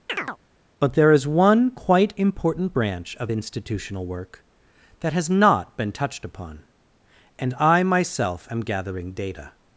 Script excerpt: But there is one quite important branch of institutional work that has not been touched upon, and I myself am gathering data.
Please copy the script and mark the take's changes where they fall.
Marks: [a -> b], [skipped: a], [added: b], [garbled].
But there is one quite important branch of institutional work that has not been touched upon, and I myself am gathering data.